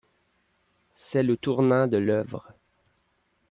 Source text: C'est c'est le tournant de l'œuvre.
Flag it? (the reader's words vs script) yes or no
yes